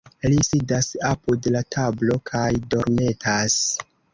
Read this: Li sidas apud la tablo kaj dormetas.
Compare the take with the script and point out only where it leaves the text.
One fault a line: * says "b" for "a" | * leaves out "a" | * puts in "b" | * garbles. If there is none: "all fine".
all fine